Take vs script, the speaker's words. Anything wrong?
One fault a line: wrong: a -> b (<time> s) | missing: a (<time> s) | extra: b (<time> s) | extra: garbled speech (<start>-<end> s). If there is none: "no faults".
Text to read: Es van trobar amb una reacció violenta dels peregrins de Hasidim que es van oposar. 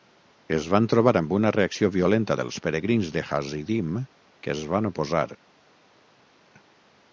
no faults